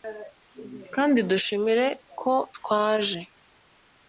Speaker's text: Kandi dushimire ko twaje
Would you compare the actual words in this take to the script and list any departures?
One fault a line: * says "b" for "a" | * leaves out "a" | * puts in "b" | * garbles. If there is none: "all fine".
all fine